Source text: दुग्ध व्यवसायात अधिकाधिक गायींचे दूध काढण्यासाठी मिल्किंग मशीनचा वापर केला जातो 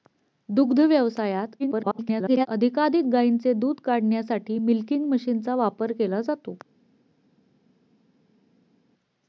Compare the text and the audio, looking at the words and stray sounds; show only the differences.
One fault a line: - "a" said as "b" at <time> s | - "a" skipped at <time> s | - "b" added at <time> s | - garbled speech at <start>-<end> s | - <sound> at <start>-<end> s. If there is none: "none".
- garbled speech at 1.6-2.5 s